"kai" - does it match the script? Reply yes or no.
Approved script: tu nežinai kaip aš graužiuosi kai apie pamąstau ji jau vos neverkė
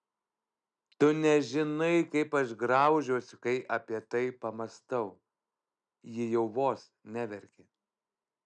yes